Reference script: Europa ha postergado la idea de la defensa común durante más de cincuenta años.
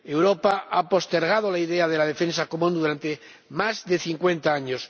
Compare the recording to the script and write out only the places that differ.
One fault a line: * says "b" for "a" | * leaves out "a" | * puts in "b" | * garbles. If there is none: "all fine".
all fine